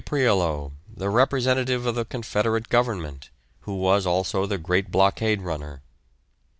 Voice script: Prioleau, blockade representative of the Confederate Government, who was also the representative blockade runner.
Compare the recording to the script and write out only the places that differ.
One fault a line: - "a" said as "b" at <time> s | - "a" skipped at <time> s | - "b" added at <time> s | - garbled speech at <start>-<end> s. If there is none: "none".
- "blockade" said as "the" at 0.9 s
- "representative" said as "great" at 4.6 s